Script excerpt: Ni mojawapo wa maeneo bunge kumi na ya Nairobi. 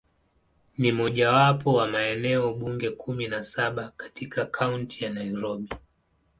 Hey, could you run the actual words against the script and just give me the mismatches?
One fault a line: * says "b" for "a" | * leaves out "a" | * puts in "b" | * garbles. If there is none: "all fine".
* puts in "saba katika Kaunti"